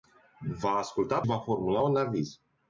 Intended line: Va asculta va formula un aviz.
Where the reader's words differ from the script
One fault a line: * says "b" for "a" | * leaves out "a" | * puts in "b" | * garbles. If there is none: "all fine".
all fine